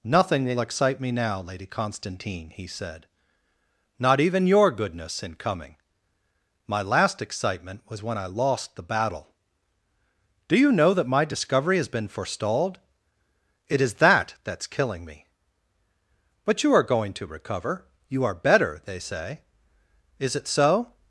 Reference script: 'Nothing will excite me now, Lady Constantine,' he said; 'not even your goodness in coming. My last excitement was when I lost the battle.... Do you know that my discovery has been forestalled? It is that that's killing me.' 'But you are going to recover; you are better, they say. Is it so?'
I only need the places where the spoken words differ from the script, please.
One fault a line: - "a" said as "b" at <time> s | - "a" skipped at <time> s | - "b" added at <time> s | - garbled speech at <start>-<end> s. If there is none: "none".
none